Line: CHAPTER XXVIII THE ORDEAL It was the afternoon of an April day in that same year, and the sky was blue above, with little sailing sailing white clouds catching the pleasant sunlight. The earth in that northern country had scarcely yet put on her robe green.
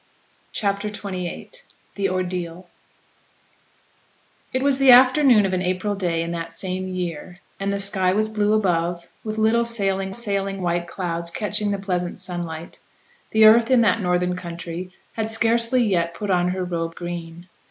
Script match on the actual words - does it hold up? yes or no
yes